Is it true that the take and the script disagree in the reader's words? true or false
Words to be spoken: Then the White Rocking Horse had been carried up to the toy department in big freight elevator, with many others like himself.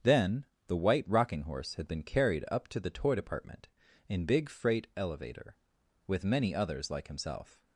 false